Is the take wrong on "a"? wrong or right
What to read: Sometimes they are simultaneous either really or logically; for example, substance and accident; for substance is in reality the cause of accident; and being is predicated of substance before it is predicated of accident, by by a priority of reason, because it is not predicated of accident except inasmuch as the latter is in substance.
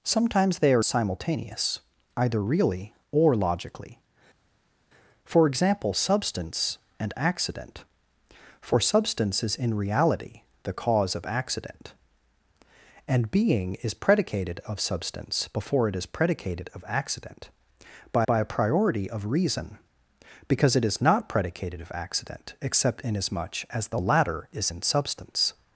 right